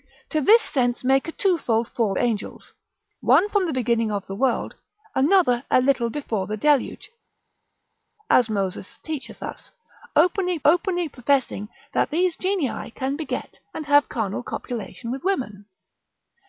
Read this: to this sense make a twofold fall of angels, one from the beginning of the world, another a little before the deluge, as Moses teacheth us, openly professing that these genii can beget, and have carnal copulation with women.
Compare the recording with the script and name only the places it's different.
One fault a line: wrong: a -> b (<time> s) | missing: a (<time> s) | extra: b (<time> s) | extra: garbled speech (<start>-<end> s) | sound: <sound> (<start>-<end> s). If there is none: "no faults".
missing: of (2.2 s)
extra: openly (10.6 s)